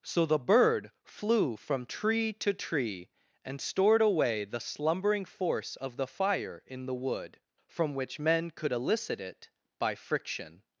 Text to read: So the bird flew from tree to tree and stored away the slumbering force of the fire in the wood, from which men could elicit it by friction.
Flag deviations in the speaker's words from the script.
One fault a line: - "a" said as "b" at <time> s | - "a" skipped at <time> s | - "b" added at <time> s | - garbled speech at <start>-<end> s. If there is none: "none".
none